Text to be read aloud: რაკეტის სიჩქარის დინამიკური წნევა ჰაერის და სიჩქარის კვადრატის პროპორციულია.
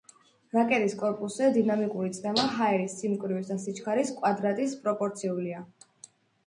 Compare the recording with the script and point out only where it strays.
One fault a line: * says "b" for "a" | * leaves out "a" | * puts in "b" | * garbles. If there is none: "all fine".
* says "კორპუსზე" for "სიჩქარის"
* puts in "სიმკვრივის"